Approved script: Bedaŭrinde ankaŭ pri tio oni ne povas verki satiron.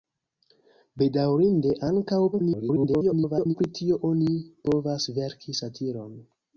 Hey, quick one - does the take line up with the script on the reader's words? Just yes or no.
no